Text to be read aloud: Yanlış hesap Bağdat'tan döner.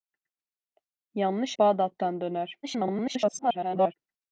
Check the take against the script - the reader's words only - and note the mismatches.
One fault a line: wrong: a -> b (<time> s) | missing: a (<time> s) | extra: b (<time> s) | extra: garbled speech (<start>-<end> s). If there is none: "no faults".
missing: hesap (1.6 s)
extra: garbled speech (2.6-3.9 s)